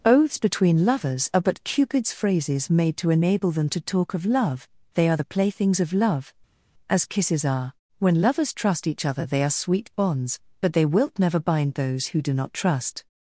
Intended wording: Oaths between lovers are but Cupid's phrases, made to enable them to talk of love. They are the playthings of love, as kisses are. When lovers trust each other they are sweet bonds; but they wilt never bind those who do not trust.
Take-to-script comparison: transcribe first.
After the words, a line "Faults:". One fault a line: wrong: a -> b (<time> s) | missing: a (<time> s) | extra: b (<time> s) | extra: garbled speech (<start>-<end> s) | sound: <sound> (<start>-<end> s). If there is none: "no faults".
Oaths between lovers are but Cupid's phrases, made to enable them to talk of love. They are the playthings of love, as kisses are. When lovers trust each other they are sweet bonds; but they wilt never bind those who do not trust.
Faults:
no faults